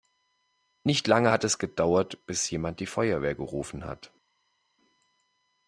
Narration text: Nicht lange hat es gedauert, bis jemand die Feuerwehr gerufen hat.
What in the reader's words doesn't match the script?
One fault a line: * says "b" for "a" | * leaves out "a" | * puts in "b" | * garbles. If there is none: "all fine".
all fine